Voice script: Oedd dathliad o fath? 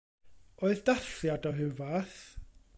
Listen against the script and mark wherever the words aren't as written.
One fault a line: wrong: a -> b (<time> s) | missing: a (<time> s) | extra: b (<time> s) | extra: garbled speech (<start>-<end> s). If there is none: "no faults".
extra: ryw (1.6 s)